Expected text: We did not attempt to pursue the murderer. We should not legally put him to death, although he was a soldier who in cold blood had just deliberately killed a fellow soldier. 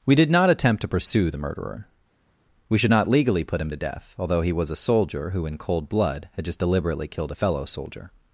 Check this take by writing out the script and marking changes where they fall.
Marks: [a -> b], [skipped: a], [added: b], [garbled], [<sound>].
We did not attempt to pursue the murderer. We should not legally put him to death, although he was a soldier who in cold blood had just deliberately killed a fellow soldier.